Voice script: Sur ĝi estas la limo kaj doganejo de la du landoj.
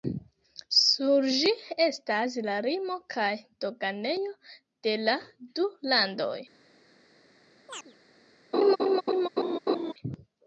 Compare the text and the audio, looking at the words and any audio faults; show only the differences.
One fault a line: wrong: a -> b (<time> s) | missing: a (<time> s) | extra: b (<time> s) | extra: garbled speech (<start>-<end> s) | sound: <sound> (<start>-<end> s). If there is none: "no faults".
sound: chirp (7.7-8.0 s)
sound: laugh (8.5-9.9 s)